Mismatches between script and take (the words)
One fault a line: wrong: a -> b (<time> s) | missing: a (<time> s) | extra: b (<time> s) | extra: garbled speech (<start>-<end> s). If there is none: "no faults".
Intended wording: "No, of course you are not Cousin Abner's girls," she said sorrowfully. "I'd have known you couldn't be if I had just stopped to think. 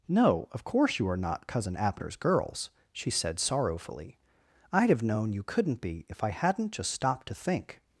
wrong: had -> hadn't (6.3 s)